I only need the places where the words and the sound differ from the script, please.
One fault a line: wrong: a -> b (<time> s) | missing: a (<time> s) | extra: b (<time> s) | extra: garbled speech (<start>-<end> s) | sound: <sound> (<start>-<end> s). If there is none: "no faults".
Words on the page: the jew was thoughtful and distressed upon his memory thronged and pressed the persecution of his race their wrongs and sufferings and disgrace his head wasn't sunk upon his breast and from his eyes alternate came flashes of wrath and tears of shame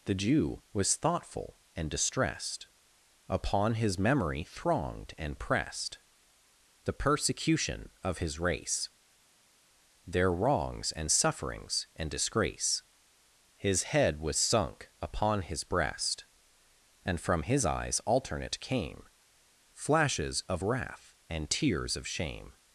wrong: wasn't -> was (14.2 s)